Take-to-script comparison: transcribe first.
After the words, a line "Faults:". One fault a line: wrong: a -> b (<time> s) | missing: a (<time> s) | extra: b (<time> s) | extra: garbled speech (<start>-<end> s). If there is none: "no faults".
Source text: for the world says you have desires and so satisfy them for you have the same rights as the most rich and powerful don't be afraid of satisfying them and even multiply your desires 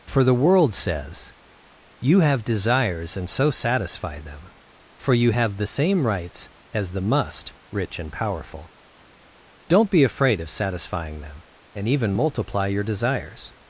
for the world says you have desires and so satisfy them for you have the same rights as the must rich and powerful don't be afraid of satisfying them and even multiply your desires
Faults:
wrong: most -> must (7.0 s)